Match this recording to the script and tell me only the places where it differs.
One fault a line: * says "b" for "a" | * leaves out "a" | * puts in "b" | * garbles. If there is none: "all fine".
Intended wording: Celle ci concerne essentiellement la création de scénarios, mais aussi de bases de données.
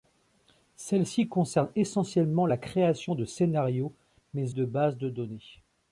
* leaves out "aussi"